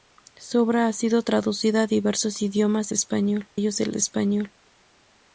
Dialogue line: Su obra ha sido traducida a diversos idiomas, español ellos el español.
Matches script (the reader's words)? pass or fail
pass